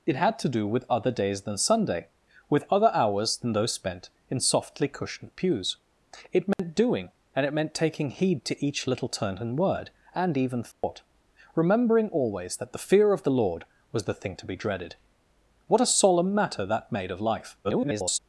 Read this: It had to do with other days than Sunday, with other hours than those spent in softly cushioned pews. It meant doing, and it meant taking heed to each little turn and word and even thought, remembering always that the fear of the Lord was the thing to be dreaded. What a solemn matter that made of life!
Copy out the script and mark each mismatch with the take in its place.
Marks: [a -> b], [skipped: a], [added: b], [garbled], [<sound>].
It had to do with other days than Sunday, with other hours than those spent in softly cushioned pews. It meant [dropout] doing, and it meant taking heed to each little turn and word and even thought, [dropout] remembering always that the fear of the Lord was the thing to be dreaded. What a solemn matter that made of life! [garbled]